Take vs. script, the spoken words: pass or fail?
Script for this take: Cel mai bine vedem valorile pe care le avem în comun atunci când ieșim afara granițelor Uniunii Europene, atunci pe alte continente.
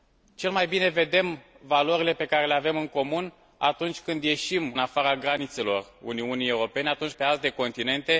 pass